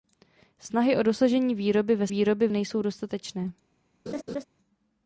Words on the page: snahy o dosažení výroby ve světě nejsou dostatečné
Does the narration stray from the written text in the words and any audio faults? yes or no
yes